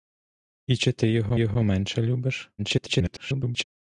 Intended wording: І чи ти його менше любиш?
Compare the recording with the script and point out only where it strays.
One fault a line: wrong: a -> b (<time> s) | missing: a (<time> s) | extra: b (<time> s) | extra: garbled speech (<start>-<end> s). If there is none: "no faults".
extra: його (1.3 s)
extra: garbled speech (2.6-3.6 s)